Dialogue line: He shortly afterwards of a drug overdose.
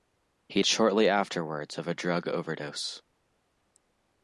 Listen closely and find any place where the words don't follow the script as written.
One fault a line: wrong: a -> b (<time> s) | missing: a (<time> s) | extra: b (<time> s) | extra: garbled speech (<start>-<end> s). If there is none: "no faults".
no faults